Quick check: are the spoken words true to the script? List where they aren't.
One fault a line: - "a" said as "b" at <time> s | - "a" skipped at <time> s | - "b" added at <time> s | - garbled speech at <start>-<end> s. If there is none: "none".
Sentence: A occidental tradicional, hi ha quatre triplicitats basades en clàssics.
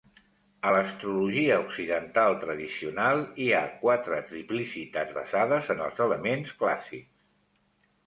- "l"Astrologia" added at 0.7 s
- "els elements" added at 5.9 s